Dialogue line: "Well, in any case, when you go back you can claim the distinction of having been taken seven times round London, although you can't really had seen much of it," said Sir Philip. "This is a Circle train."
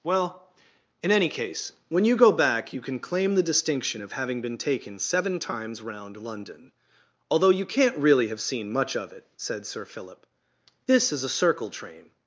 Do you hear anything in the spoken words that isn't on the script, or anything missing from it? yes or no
yes